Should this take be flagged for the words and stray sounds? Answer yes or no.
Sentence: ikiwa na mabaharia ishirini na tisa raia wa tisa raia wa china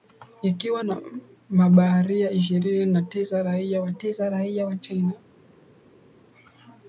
no